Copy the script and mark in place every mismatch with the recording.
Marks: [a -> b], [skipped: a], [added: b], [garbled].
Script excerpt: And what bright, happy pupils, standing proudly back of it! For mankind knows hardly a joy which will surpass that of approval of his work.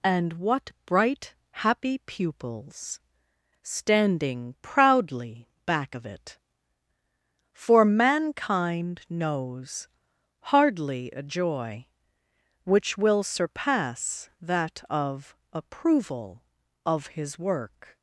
And what bright, happy pupils, standing proudly back of it! For mankind knows hardly a joy which will surpass that of approval of his work.